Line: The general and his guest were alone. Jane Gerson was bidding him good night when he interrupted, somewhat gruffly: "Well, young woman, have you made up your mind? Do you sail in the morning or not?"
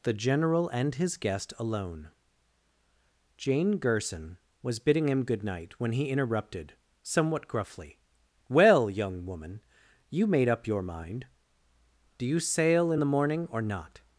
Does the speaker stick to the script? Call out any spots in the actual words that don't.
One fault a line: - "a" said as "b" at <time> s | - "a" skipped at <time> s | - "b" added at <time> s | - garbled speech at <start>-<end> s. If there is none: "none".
- "were" skipped at 1.5 s
- "have" skipped at 9.6 s